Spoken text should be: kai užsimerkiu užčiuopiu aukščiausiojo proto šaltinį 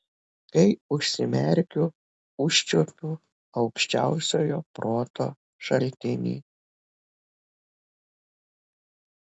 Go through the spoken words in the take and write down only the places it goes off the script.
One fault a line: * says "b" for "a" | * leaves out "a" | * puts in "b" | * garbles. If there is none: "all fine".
all fine